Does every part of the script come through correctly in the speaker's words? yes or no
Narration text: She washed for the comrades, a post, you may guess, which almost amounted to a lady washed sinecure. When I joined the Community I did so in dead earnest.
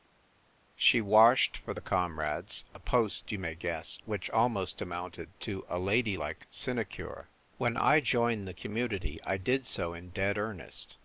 no